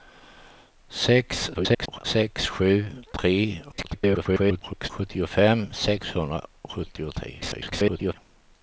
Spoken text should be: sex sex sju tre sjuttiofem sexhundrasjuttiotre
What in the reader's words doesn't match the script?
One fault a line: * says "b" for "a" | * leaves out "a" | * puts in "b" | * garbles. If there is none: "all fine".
* garbles
* garbles
* garbles